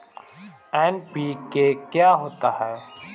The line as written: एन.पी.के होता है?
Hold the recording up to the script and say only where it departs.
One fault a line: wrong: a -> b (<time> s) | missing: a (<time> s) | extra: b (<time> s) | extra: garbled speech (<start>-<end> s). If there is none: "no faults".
extra: क्या (1.7 s)